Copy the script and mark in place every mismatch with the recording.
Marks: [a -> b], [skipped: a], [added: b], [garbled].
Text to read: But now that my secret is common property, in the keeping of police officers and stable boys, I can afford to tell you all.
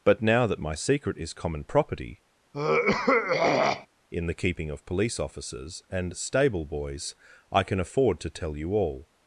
But now that my secret is common property, in the keeping of police officers and stable boys, I can afford to tell you all.